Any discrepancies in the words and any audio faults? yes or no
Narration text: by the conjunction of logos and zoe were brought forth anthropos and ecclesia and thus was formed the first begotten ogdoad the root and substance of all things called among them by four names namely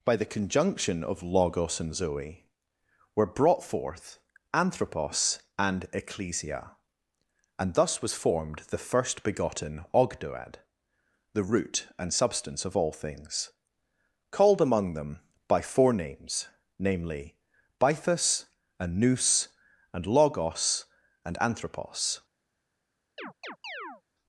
yes